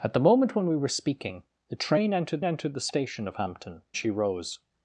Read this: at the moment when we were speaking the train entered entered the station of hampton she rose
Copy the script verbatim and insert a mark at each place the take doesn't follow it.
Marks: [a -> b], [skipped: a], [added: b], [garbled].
at the moment when we were speaking the train entered entered the station of hampton she rose